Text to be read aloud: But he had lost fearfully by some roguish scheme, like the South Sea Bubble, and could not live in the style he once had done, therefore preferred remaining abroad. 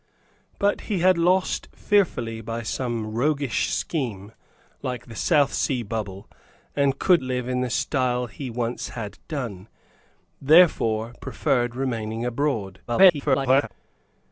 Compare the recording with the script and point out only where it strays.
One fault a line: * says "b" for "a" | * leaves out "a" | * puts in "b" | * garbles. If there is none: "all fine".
* leaves out "not"
* garbles